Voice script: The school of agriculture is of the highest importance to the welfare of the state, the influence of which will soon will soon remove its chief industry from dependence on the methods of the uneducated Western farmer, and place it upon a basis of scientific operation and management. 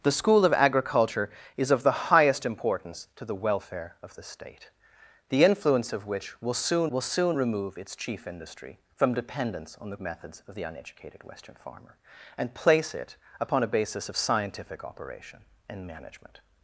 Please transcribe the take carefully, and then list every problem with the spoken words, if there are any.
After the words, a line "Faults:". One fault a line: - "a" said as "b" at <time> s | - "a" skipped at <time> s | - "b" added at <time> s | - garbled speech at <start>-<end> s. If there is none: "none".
The school of agriculture is of the highest importance to the welfare of the state, the influence of which will soon will soon remove its chief industry from dependence on the methods of the uneducated Western farmer, and place it upon a basis of scientific operation and management.
Faults:
none